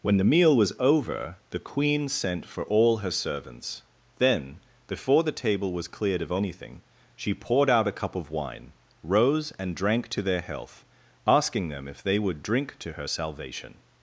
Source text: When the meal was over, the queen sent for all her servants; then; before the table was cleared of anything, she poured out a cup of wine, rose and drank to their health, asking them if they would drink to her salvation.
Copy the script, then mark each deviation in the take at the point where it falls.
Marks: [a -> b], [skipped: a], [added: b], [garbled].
When the meal was over, the queen sent for all her servants; then; before the table was cleared of anything, she poured out a cup of wine, rose and drank to their health, asking them if they would drink to her salvation.